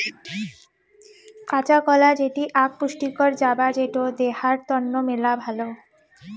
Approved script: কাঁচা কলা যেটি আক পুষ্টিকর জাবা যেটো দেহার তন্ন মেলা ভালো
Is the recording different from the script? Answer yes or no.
no